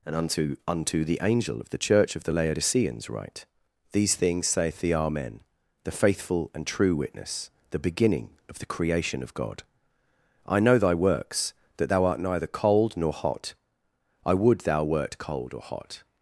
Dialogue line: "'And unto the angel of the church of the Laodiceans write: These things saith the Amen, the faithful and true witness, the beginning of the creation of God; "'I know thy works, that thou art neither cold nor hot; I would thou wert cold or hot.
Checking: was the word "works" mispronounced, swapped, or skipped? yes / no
no